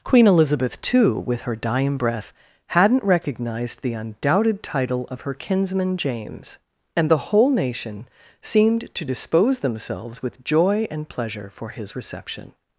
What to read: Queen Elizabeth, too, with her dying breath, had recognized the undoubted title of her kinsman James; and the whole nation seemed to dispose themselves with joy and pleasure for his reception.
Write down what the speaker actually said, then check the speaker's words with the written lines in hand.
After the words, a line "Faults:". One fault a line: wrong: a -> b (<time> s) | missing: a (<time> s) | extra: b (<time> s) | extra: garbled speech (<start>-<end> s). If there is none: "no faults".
Queen Elizabeth, too, with her dying breath, hadn't recognized the undoubted title of her kinsman James; and the whole nation seemed to dispose themselves with joy and pleasure for his reception.
Faults:
wrong: had -> hadn't (2.7 s)